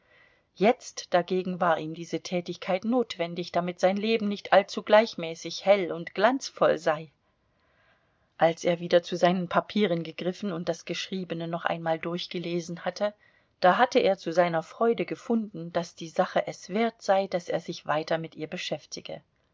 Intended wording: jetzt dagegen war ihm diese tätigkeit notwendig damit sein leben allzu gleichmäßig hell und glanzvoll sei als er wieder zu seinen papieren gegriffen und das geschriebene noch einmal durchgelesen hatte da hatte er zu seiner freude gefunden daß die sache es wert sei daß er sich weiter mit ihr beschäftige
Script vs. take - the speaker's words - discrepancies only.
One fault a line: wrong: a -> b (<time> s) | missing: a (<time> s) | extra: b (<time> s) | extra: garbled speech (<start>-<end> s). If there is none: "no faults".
extra: nicht (4.3 s)